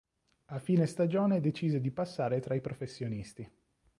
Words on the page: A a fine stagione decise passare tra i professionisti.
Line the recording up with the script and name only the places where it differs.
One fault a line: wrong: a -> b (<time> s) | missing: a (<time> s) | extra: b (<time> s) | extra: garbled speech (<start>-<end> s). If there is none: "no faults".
missing: a (0.6 s)
extra: di (1.8 s)